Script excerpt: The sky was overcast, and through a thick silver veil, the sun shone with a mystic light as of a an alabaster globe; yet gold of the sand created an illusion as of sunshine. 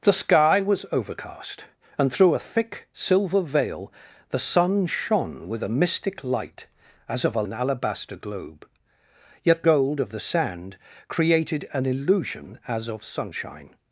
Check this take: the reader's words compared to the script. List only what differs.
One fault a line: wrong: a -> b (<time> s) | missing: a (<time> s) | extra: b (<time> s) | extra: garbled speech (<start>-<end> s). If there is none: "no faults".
no faults